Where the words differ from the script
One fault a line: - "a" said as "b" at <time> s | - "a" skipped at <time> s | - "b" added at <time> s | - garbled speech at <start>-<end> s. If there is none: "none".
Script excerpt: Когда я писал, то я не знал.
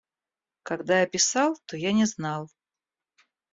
none